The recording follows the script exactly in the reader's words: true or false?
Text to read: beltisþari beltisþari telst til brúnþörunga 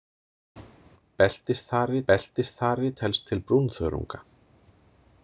true